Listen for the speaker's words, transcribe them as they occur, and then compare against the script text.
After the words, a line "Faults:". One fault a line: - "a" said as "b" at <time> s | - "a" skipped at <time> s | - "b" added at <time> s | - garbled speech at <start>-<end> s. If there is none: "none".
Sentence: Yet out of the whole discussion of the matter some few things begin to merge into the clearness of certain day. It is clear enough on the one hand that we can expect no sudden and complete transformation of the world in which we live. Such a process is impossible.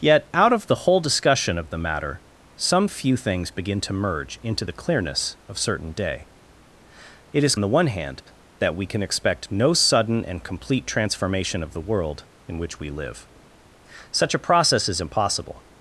Yet out of the whole discussion of the matter some few things begin to merge into the clearness of certain day. It is the one hand that we can expect no sudden and complete transformation of the world in which we live. Such a process is impossible.
Faults:
- "clear enough on" skipped at 7.5 s